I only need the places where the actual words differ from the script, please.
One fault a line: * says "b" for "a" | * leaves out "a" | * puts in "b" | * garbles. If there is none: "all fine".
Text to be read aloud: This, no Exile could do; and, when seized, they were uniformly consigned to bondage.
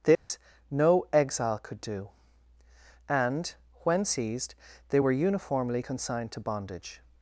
all fine